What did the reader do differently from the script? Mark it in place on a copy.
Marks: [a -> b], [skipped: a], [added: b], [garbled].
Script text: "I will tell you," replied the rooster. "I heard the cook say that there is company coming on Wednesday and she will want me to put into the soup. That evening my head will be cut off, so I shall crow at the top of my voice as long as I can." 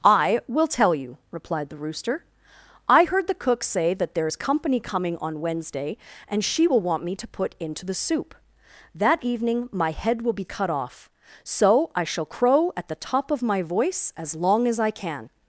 "I will tell you," replied the rooster. "I heard the cook say that there is company coming on Wednesday and she will want me to put into the soup. That evening my head will be cut off, so I shall crow at the top of my voice as long as I can."